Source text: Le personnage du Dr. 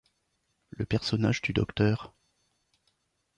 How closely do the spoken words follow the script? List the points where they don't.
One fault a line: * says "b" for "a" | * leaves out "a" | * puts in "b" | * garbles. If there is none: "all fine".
all fine